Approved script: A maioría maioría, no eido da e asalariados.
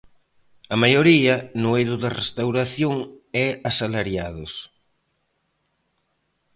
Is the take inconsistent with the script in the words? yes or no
yes